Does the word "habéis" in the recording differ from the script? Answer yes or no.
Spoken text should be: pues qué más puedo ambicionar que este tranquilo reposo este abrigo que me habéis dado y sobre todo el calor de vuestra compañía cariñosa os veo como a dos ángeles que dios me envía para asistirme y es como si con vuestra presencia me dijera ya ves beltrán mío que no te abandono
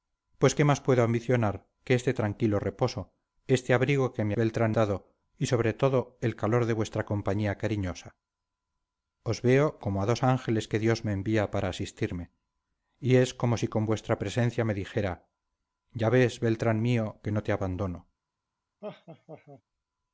yes